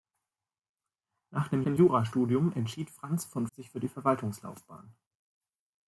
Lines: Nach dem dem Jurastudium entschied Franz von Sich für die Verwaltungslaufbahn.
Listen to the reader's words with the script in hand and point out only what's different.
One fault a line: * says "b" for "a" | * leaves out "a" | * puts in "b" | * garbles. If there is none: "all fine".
all fine